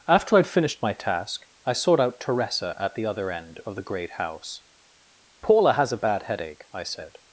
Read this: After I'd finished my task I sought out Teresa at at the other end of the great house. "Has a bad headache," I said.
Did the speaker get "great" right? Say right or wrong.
right